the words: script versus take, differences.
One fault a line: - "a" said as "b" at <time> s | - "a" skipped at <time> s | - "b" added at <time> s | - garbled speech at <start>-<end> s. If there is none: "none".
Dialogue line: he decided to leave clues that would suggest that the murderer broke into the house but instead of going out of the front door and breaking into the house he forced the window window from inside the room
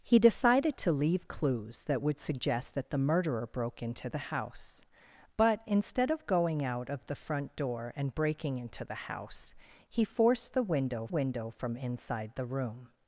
none